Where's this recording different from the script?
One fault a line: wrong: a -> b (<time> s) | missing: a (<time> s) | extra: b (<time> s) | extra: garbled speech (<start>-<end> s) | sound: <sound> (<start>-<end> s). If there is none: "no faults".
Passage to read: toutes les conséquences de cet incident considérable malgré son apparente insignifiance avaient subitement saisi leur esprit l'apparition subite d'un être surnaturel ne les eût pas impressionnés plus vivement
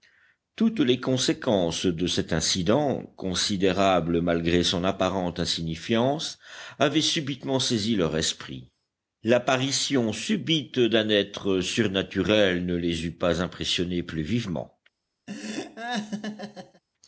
sound: laugh (15.3-16.8 s)